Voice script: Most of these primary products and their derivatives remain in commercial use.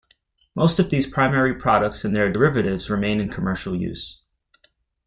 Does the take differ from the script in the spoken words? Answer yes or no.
no